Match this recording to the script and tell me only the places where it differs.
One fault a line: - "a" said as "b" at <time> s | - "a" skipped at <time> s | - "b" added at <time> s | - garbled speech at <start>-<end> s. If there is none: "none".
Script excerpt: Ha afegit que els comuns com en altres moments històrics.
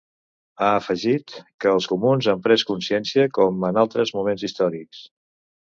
- "han pres consciència" added at 2.3 s